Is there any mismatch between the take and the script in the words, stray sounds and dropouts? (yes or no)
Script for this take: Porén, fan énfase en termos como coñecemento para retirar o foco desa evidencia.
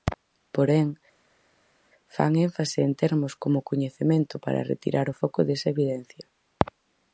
no